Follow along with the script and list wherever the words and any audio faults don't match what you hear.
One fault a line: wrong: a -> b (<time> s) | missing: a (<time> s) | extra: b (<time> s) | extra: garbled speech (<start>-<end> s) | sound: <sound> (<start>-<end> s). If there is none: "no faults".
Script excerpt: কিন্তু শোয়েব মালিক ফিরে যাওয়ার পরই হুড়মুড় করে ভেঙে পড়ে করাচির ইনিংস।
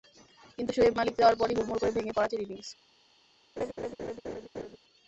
missing: ফিরে (1.1 s)
missing: পড়ে (2.1 s)
sound: laugh (3.6-4.8 s)